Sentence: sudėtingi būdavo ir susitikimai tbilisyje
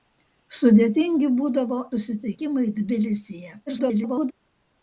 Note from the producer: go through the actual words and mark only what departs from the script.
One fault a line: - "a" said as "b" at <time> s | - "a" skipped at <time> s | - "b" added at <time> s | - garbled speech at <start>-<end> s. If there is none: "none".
- "ir" skipped at 1.8 s
- garbled speech at 3.7-4.3 s